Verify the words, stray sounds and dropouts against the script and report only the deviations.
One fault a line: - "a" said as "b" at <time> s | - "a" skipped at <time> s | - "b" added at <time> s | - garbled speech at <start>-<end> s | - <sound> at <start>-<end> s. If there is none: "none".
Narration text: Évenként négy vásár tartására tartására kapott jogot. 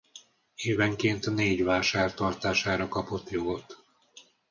- "tartására" skipped at 2.9 s